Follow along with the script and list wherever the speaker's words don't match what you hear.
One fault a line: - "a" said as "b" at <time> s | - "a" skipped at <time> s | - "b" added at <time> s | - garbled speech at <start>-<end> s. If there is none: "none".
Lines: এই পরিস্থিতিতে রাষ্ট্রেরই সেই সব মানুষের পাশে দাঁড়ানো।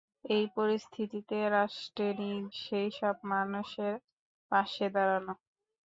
none